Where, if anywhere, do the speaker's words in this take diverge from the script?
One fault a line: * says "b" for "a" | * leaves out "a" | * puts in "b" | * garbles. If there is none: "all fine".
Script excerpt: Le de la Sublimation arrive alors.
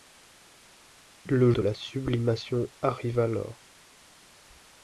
all fine